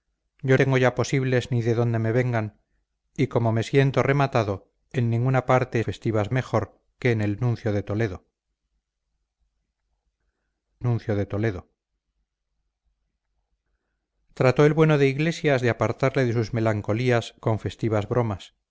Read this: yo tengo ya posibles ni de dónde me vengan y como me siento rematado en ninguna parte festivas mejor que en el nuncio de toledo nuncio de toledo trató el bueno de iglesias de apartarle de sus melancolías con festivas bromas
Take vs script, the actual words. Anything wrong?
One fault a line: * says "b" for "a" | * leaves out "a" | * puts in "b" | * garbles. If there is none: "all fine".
all fine